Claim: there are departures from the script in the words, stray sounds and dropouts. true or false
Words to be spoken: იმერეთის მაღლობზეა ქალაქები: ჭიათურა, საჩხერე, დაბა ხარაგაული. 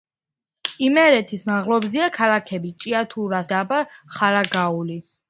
true